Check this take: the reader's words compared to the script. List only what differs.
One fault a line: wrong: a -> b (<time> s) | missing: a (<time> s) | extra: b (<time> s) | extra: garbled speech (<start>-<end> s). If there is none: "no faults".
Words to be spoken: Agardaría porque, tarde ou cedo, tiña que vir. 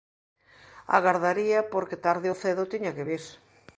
no faults